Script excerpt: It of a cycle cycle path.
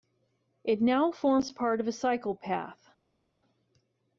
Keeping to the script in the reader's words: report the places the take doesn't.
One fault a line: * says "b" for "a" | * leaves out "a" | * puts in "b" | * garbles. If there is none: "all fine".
* puts in "now forms part"
* leaves out "cycle"